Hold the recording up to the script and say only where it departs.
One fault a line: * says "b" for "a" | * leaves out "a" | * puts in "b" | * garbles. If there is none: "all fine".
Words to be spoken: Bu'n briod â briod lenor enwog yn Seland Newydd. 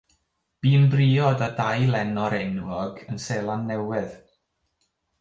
* says "dau" for "briod"